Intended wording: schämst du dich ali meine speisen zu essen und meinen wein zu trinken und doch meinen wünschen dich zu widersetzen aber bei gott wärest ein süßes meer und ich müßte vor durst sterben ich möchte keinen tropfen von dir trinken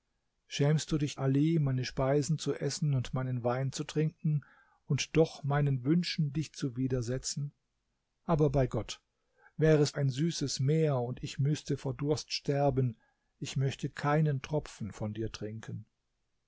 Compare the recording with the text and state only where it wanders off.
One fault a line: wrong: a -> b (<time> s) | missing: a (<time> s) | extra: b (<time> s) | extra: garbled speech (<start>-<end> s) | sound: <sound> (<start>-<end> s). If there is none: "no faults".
no faults